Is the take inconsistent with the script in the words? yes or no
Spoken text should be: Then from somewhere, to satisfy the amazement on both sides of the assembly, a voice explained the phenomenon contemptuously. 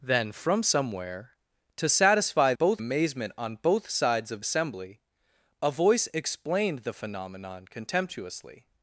yes